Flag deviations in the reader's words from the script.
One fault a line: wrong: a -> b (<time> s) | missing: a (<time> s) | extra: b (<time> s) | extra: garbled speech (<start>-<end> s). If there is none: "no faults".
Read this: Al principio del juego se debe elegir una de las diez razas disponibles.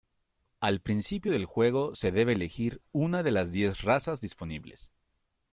no faults